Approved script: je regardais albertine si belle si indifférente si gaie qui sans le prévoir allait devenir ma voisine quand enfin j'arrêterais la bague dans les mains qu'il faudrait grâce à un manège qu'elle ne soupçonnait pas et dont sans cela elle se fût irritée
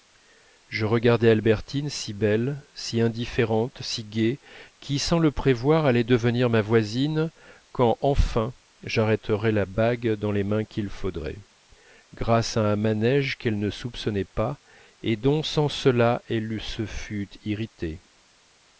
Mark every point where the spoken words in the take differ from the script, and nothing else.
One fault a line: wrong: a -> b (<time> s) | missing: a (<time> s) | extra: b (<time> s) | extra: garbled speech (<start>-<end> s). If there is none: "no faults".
no faults